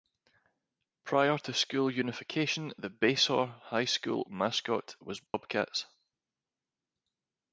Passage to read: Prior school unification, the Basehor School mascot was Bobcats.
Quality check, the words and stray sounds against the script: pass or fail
fail